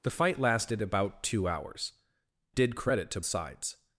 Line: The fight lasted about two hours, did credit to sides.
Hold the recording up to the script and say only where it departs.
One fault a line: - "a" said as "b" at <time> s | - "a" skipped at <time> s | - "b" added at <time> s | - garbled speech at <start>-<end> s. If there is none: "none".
none